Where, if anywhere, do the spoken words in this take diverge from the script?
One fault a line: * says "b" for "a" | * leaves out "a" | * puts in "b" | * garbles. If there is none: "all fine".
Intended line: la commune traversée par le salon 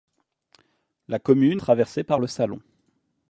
all fine